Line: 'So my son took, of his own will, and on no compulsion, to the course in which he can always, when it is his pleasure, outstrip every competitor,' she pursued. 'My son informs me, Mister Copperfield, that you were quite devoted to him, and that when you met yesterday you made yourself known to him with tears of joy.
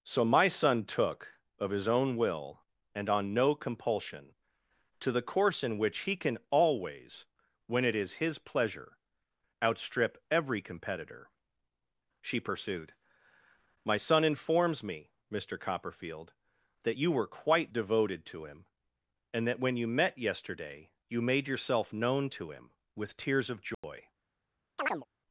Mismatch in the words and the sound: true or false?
true